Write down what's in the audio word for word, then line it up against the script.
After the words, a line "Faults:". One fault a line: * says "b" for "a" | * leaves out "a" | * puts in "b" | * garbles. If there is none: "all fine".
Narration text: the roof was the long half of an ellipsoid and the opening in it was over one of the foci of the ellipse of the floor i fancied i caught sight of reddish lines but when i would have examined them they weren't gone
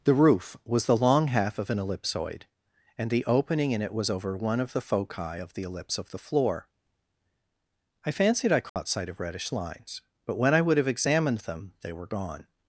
the roof was the long half of an ellipsoid and the opening in it was over one of the foci of the ellipse of the floor i fancied i caught sight of reddish lines but when i would have examined them they were gone
Faults:
* says "were" for "weren't"